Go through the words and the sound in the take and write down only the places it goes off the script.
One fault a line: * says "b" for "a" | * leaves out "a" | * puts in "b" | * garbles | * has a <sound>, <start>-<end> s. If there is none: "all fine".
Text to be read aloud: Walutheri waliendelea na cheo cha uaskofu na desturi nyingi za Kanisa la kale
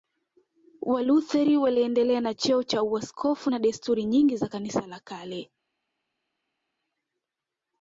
all fine